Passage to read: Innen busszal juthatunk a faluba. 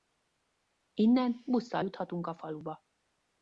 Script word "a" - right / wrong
right